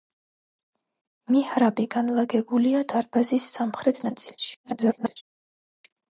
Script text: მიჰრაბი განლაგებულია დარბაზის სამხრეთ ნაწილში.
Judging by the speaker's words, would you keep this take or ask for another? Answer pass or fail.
fail